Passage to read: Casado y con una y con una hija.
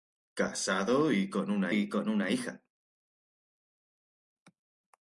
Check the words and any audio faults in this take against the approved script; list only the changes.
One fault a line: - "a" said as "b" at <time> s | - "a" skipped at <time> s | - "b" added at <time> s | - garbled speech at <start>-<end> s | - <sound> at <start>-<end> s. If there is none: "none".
none